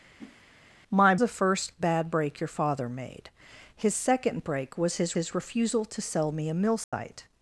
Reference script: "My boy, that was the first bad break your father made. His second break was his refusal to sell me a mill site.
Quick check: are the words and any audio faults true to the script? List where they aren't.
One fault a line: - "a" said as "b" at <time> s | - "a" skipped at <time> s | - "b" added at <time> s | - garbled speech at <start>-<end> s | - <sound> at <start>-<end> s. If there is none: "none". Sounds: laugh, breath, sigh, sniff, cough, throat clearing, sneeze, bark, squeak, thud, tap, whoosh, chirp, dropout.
- whoosh at 0.2-0.4 s
- "boy that was" skipped at 1.2 s
- "his" added at 5.1 s
- dropout at 6.8-6.9 s